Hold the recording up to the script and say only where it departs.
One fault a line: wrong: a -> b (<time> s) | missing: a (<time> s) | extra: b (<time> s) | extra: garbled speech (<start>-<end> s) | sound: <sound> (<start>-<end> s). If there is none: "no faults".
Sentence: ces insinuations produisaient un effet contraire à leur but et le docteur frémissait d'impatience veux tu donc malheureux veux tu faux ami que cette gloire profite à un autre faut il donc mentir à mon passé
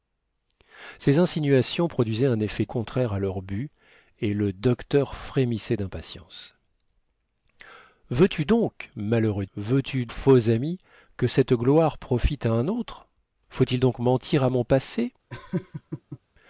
sound: laugh (15.3-16.2 s)